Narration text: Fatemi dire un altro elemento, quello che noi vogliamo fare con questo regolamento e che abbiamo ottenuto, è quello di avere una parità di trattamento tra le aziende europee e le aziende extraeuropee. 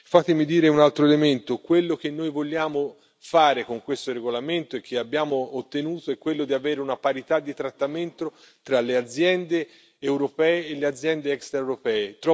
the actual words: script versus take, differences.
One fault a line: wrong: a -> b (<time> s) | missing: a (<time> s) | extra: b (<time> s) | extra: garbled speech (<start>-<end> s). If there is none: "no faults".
no faults